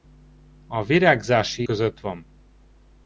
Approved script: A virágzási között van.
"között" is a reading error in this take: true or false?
false